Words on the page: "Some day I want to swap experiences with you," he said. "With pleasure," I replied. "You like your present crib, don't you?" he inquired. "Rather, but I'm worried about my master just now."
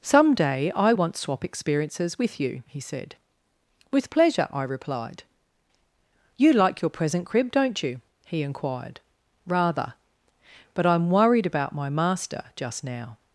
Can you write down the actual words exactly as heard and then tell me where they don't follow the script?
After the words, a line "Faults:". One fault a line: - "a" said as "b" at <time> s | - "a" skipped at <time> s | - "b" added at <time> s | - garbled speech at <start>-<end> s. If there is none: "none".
"Some day I want swap experiences with you," he said. "With pleasure," I replied. "You like your present crib, don't you?" he inquired. "Rather, but I'm worried about my master just now."
Faults:
- "to" skipped at 1.2 s